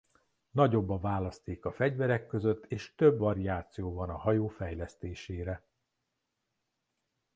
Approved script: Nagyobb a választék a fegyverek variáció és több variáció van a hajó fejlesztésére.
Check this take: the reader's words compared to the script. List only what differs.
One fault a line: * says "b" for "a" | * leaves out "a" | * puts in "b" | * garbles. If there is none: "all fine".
* says "között" for "variáció"